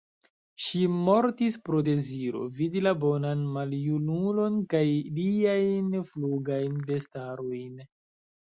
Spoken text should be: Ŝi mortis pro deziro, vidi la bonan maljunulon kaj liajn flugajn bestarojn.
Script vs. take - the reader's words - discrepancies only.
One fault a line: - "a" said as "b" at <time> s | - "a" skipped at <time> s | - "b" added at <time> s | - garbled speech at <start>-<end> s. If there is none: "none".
none